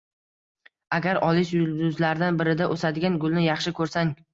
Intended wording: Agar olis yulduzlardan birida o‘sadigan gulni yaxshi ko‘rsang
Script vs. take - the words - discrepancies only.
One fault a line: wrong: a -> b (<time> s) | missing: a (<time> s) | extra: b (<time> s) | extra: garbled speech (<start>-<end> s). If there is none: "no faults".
no faults